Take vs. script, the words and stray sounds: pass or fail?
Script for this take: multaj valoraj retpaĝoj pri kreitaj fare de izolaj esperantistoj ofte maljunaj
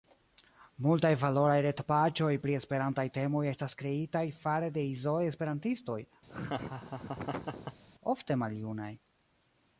fail